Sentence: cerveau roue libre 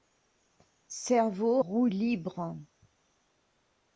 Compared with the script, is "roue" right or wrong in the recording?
right